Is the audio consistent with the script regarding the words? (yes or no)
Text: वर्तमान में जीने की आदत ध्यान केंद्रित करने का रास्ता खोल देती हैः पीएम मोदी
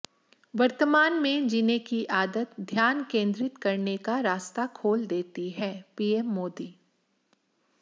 yes